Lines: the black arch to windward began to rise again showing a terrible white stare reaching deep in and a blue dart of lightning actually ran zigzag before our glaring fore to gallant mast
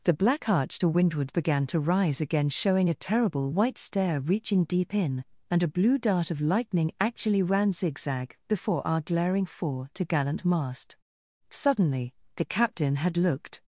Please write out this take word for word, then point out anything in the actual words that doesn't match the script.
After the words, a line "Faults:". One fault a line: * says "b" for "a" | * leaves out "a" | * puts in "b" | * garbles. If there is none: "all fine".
the black arch to windward began to rise again showing a terrible white stare reaching deep in and a blue dart of lightning actually ran zigzag before our glaring fore to gallant mast suddenly the captain had looked
Faults:
* puts in "suddenly the captain had looked"